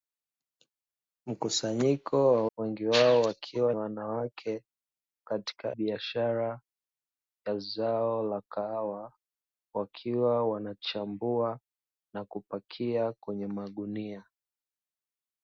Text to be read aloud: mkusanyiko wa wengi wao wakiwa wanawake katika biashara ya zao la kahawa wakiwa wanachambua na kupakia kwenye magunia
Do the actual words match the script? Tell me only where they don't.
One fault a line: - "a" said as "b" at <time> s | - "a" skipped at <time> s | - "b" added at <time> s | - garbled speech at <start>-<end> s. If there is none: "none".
none